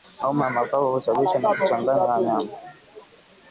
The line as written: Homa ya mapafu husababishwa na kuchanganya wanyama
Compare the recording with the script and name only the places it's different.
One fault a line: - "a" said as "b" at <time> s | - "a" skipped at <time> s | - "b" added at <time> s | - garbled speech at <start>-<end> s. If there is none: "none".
none